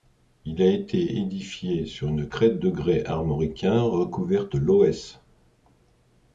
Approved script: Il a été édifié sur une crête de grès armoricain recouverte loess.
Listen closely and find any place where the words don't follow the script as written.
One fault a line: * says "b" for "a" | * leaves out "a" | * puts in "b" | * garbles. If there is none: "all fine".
all fine